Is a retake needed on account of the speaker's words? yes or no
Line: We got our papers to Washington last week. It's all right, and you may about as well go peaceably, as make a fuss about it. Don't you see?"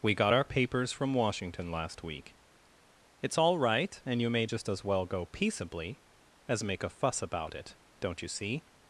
yes